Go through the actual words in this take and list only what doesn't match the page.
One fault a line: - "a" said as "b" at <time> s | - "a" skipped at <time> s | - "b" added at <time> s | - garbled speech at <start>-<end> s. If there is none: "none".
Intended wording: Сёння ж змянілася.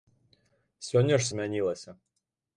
none